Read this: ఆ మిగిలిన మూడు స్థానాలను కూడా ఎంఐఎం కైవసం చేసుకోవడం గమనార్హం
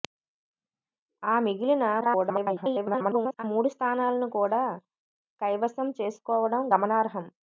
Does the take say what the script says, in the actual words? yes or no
no